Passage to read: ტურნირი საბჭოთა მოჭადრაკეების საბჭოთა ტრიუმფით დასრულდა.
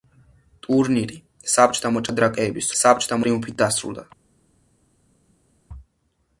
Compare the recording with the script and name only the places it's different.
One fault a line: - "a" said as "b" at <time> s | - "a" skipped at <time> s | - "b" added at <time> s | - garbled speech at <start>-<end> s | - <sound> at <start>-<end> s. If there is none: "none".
none